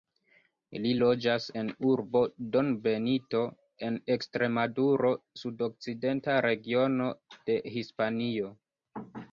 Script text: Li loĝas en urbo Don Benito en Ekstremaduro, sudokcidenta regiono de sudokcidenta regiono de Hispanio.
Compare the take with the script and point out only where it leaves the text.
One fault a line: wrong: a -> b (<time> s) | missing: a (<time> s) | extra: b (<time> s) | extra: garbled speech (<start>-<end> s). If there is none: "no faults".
missing: sudokcidenta regiono de (7.6 s)